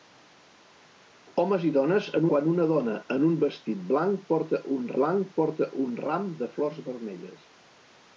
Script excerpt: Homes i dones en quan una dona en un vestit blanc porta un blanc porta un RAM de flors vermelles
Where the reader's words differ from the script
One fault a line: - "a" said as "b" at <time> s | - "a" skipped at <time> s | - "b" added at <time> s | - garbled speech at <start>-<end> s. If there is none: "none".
none